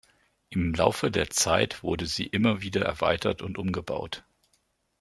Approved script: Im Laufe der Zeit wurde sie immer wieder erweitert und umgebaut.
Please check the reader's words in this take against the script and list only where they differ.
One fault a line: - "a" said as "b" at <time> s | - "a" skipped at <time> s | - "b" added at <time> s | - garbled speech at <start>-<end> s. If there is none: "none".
none